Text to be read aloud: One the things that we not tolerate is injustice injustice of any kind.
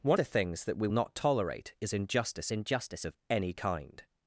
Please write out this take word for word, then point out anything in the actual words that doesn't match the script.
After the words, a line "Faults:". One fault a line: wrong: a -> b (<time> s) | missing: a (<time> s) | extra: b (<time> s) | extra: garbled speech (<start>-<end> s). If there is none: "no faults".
One the things that we not tolerate is injustice injustice of any kind.
Faults:
no faults